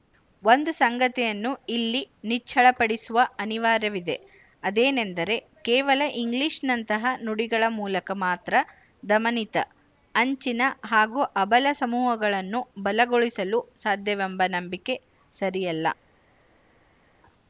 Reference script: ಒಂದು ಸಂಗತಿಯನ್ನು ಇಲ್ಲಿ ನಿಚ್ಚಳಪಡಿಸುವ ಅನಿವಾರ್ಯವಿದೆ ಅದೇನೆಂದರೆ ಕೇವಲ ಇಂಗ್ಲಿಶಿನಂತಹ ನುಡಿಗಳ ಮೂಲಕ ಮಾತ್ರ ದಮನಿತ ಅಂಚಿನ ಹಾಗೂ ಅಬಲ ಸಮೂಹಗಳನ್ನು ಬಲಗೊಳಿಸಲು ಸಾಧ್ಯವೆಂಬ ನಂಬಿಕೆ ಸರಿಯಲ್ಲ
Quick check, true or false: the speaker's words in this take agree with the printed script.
true